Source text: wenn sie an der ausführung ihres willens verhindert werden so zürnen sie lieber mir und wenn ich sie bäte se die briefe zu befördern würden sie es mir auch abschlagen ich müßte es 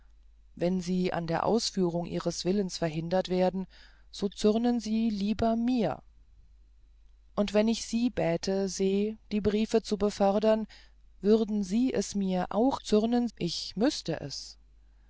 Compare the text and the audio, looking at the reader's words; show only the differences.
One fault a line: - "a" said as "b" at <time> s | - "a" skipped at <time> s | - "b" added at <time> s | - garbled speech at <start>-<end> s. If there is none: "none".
- "abschlagen" said as "zürnen" at 12.8 s